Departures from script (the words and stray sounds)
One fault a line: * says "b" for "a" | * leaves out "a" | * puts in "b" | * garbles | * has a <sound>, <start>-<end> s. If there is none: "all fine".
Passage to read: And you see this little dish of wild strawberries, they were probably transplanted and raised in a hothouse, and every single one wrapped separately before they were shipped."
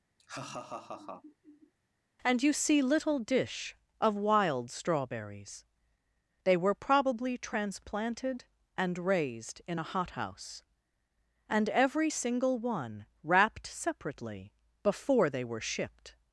* has a laugh, 0.2-1.7 s
* leaves out "this"